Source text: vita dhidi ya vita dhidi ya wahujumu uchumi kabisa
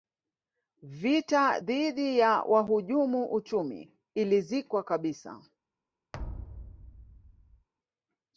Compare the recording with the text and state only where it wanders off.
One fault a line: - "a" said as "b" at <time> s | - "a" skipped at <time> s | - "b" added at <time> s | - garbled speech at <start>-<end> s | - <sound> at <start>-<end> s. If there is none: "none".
- "vita dhidi ya" skipped at 2.4 s
- "ilizikwa" added at 4.1 s
- thud at 6.1-7.7 s